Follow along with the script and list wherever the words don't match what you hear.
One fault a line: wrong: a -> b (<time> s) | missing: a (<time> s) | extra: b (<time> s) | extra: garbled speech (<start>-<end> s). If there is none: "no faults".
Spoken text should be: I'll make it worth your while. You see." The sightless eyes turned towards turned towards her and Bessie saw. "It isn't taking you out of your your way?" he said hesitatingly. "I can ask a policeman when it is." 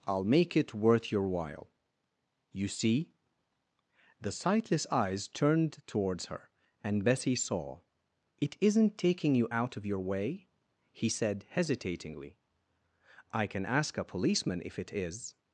missing: turned towards (6.2 s)
missing: your (10.0 s)
wrong: when -> if (14.7 s)